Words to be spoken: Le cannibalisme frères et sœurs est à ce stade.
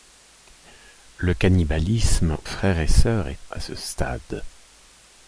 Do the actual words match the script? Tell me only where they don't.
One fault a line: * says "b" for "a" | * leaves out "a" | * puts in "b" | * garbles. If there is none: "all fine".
all fine